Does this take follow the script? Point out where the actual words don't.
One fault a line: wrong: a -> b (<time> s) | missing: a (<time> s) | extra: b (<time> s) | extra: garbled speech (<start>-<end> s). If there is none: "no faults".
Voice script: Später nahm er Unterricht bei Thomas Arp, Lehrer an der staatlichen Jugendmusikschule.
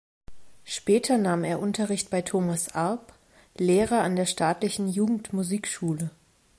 no faults